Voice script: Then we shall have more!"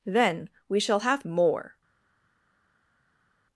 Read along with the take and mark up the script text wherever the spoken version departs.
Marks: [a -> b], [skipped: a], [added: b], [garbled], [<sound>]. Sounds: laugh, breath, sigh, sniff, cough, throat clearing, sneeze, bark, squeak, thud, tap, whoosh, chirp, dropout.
Then we shall have more!"